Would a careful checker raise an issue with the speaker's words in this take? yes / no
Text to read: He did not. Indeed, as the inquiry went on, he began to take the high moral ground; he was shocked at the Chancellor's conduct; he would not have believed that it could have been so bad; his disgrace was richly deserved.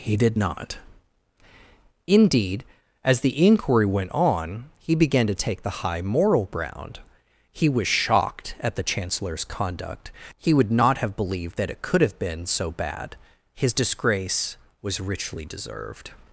no